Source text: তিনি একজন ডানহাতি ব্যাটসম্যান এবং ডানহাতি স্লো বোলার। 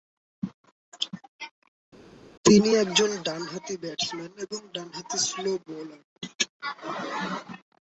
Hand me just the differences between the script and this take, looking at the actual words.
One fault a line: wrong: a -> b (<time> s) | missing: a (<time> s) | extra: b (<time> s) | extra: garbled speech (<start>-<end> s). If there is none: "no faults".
no faults